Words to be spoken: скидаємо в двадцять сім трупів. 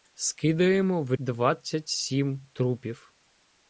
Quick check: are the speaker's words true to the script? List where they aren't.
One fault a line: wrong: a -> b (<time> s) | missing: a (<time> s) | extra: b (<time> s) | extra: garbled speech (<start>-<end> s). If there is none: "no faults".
no faults